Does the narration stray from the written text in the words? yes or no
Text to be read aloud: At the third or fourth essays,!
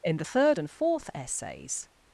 yes